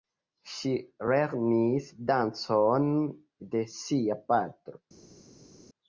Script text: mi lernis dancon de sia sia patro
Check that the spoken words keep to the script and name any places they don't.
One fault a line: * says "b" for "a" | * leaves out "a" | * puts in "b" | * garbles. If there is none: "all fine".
* says "ŝi" for "mi"
* leaves out "sia"